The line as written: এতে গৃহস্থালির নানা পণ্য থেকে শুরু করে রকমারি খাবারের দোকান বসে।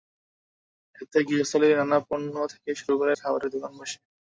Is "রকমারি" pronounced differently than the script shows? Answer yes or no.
yes